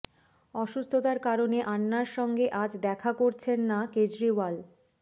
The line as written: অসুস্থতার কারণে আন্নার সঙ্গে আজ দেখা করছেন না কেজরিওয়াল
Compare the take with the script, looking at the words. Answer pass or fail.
pass